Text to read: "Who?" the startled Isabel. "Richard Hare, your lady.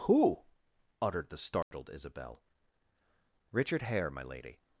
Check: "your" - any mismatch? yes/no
yes